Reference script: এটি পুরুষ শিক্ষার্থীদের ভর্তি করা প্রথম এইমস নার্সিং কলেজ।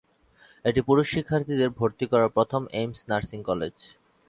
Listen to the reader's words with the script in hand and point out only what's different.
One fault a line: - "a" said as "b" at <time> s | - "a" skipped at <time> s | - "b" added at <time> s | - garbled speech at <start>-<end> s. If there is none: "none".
none